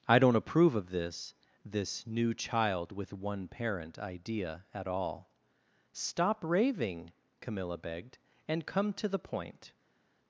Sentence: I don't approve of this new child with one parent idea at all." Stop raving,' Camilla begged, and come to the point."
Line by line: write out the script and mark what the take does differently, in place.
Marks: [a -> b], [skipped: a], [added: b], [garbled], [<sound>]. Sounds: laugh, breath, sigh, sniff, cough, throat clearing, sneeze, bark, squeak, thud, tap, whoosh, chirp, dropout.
I don't approve of this [added: this] new child with one parent idea at all." Stop raving,' Camilla begged, and come to the point."